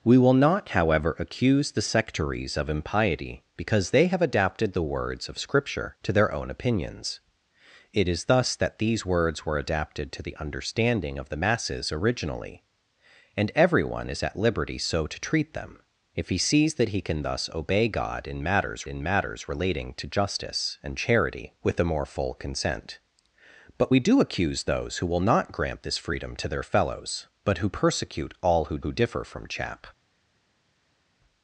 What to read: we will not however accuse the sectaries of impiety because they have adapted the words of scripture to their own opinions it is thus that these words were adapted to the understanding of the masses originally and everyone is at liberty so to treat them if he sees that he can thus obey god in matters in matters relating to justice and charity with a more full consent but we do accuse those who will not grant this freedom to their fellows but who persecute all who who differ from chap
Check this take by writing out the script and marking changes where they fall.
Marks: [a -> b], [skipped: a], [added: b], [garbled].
we will not however accuse the sectaries of impiety because they have adapted the words of scripture to their own opinions it is thus that these words were adapted to the understanding of the masses originally and everyone is at liberty so to treat them if he sees that he can thus obey god in matters in matters relating to justice and charity with a more full consent but we do accuse those who will not grant this freedom to their fellows but who persecute all who who differ from chap